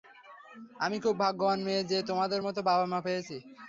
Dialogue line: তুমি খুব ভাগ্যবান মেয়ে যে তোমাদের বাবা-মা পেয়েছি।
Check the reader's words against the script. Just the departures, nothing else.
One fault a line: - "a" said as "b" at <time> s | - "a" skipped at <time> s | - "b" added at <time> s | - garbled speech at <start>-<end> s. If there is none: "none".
- "তুমি" said as "আমি" at 0.8 s
- "মতো" added at 2.5 s